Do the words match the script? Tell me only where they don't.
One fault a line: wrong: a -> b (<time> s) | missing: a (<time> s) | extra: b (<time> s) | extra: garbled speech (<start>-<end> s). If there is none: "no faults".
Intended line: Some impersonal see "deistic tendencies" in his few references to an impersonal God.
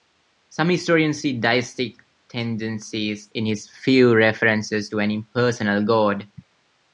wrong: impersonal -> historians (0.7 s)